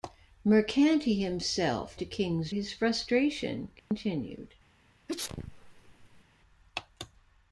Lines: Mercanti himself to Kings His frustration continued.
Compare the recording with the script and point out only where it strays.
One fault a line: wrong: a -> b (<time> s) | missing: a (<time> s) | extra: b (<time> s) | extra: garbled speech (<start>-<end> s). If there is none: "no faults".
no faults